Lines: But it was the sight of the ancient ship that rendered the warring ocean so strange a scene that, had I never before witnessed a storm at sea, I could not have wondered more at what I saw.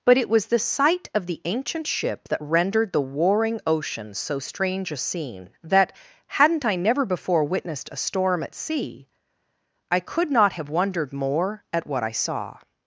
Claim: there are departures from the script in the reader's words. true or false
true